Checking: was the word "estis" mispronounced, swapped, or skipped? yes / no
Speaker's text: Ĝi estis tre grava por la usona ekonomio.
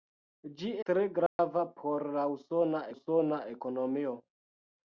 yes